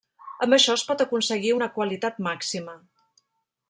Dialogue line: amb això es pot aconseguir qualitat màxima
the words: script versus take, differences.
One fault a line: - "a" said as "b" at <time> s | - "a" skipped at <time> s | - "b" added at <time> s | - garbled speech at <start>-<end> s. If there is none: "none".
- "una" added at 1.6 s